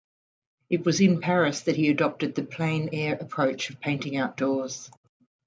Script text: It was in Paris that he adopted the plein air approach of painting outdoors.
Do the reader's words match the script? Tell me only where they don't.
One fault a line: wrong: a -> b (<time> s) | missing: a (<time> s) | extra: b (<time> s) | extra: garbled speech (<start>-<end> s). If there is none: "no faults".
no faults